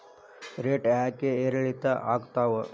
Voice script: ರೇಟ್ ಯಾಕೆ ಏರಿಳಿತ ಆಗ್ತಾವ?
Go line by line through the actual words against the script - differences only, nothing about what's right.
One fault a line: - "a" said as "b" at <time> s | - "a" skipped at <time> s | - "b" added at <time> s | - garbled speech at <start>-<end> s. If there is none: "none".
none